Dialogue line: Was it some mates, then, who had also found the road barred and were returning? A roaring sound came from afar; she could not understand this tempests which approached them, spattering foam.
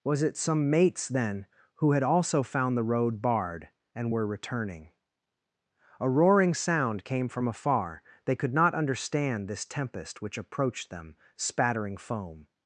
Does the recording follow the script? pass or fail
fail